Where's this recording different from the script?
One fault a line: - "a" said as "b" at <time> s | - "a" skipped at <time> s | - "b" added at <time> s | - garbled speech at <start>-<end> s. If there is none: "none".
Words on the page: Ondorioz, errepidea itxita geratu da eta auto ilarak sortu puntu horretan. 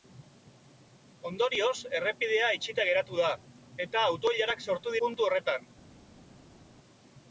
none